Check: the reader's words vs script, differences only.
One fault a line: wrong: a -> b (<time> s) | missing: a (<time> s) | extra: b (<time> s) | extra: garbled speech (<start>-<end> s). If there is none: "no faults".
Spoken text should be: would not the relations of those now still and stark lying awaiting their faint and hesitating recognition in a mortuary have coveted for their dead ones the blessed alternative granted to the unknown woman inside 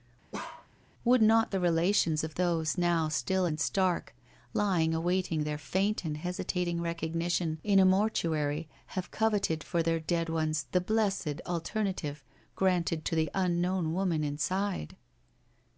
no faults